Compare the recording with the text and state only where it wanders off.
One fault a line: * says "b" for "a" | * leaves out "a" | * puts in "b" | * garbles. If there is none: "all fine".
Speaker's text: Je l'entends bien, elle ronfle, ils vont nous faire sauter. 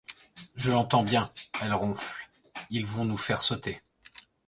all fine